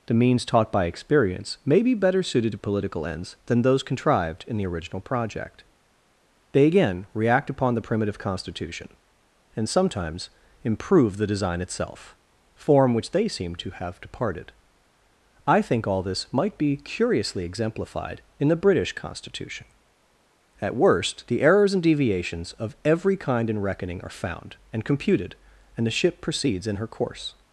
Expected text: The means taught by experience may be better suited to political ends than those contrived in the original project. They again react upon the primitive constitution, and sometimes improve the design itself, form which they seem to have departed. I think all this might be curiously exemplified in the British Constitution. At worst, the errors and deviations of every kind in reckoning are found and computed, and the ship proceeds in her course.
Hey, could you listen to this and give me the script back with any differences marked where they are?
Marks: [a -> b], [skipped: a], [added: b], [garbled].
The means taught by experience may be better suited to political ends than those contrived in the original project. They again react upon the primitive constitution, and sometimes improve the design itself, form which they seem to have departed. I think all this might be curiously exemplified in the British Constitution. At worst, the errors and deviations of every kind in reckoning are found and computed, and the ship proceeds in her course.